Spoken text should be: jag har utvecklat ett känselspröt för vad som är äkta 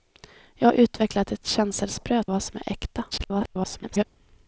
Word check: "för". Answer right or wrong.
wrong